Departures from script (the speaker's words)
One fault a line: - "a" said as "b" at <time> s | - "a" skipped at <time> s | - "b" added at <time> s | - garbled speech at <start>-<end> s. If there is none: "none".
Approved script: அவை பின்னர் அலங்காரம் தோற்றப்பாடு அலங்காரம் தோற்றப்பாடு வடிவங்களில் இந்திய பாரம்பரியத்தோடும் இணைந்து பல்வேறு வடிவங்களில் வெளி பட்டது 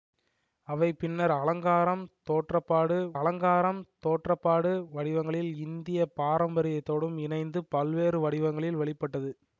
none